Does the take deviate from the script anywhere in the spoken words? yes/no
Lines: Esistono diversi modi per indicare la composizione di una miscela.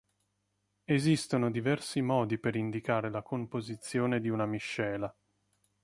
no